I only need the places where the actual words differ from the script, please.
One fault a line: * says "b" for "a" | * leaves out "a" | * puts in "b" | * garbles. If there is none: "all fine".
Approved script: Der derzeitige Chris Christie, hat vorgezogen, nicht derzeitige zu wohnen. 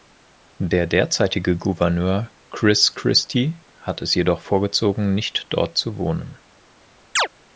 * puts in "Gouverneur"
* puts in "es jedoch"
* says "dort" for "derzeitige"